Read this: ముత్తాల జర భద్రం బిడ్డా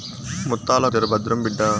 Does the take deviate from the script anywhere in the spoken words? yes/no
no